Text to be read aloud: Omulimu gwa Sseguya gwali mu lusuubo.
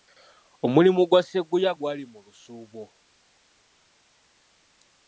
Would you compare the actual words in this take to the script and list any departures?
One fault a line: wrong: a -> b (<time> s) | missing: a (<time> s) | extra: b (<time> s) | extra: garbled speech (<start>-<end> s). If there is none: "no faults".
no faults